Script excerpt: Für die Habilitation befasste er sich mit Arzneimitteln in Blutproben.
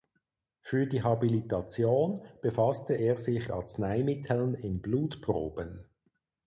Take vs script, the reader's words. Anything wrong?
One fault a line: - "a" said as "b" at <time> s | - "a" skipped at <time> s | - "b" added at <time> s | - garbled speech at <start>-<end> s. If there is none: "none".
- "mit" skipped at 3.5 s